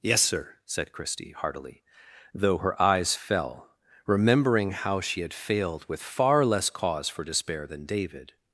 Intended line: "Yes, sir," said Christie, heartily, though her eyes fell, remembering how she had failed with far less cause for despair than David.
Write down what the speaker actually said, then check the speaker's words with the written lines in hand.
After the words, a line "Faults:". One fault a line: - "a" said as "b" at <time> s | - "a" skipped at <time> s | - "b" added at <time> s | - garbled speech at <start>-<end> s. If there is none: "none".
"Yes, sir," said Christie, heartily, though her eyes fell, remembering how she had failed with far less cause for despair than David.
Faults:
none